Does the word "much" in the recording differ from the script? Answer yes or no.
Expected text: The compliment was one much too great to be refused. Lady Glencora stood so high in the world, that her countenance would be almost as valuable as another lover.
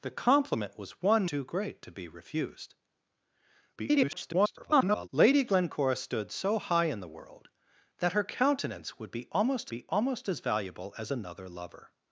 yes